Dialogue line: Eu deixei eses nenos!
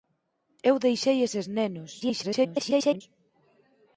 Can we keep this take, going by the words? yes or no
no